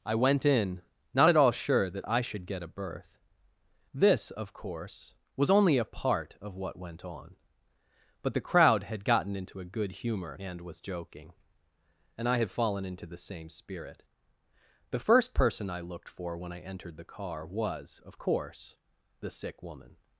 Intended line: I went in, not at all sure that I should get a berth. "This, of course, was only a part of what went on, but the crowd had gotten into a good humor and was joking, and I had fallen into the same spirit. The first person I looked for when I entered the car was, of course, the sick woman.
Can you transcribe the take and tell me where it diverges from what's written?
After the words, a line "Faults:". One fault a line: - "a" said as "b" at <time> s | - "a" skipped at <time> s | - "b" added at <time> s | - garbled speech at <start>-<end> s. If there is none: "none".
I went in, not at all sure that I should get a berth. "This, of course, was only a part of what went on, but the crowd had gotten into a good humor and was joking, and I had fallen into the same spirit. The first person I looked for when I entered the car was, of course, the sick woman.
Faults:
none